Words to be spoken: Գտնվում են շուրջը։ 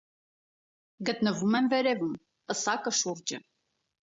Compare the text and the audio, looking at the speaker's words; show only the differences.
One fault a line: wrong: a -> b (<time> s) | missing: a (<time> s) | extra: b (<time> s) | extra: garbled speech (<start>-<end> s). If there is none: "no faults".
extra: վերևում պսակը (1.7 s)